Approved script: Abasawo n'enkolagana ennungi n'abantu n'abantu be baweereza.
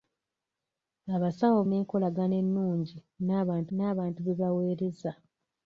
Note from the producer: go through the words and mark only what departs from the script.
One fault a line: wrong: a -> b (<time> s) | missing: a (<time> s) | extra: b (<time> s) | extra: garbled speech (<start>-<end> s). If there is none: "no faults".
no faults